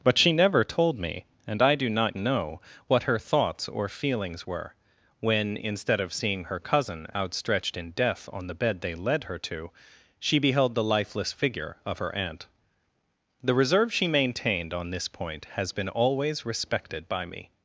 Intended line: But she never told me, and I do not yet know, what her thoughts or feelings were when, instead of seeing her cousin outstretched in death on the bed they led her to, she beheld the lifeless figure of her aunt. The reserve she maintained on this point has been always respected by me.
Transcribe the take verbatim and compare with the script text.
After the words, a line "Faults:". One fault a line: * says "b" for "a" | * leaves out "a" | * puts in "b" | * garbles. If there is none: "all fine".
But she never told me, and I do not know, what her thoughts or feelings were when, instead of seeing her cousin outstretched in death on the bed they led her to, she beheld the lifeless figure of her aunt. The reserve she maintained on this point has been always respected by me.
Faults:
* leaves out "yet"